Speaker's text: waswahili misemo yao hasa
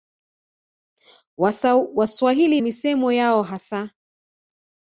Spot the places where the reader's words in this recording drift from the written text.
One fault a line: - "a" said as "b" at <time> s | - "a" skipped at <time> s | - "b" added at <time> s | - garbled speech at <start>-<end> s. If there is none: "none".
none